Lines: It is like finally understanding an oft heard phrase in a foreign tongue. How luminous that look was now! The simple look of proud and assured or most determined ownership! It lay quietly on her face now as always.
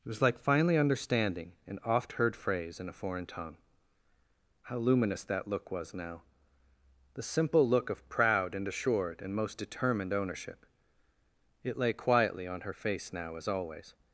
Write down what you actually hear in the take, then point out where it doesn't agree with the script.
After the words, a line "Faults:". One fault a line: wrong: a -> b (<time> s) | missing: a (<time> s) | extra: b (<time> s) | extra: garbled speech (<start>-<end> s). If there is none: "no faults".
It was like finally understanding an oft heard phrase in a foreign tongue. How luminous that look was now! The simple look of proud and assured and most determined ownership! It lay quietly on her face now as always.
Faults:
wrong: is -> was (0.1 s)
wrong: or -> and (9.2 s)